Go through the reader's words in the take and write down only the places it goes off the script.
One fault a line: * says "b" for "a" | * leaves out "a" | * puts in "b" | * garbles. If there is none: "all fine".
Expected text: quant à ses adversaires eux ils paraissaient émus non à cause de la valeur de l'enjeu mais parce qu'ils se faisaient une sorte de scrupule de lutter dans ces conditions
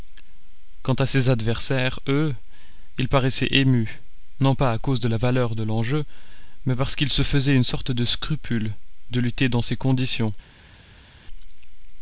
* puts in "pas"